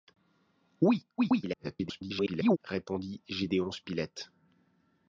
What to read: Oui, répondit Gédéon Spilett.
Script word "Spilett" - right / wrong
right